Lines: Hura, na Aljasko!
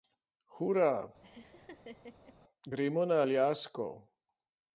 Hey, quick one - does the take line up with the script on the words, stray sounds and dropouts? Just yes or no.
no